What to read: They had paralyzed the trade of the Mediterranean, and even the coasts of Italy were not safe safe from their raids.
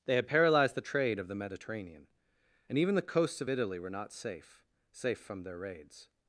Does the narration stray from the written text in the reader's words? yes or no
no